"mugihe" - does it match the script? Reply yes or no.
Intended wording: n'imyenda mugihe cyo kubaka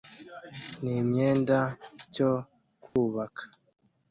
no